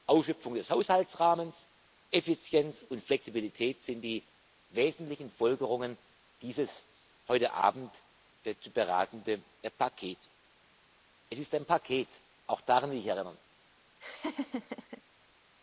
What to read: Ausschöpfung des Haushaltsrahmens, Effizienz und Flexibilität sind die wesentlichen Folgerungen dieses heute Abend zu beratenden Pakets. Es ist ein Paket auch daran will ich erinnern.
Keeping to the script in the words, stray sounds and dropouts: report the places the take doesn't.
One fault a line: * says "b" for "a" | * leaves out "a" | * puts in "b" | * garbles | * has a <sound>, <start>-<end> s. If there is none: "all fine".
* has a laugh, 14.0-15.0 s